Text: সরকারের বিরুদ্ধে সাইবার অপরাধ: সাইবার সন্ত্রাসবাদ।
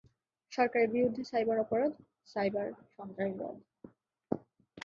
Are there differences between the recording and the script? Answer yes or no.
no